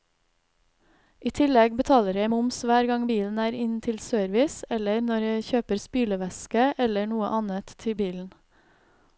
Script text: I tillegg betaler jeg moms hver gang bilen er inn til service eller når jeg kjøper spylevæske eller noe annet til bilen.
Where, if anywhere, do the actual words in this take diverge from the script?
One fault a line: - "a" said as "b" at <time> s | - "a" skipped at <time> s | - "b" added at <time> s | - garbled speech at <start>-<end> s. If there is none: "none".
none